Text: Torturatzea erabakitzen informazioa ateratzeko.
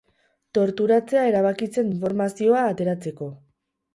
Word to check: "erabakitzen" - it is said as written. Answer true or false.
true